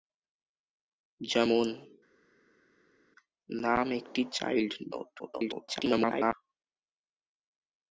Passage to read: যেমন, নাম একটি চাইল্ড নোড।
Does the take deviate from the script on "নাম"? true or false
false